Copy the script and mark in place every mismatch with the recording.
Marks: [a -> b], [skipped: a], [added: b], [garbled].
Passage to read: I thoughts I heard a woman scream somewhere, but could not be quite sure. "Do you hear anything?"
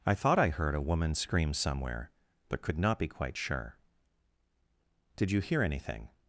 I [thoughts -> thought] I heard a woman scream somewhere, but could not be quite sure. ["Do -> Did] you hear anything?"